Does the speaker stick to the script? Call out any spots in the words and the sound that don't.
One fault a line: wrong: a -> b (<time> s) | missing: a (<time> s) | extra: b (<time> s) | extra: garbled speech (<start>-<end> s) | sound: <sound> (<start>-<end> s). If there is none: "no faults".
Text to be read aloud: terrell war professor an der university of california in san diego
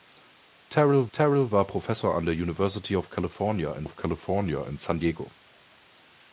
extra: terrell (1.1 s)
extra: of california in (3.8 s)